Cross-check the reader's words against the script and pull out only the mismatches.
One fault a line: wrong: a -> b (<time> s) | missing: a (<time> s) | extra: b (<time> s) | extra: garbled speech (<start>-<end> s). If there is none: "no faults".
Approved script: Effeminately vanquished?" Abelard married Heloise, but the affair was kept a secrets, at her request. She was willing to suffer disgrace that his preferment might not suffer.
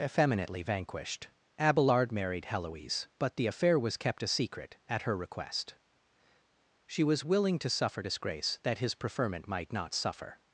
wrong: secrets -> secret (4.3 s)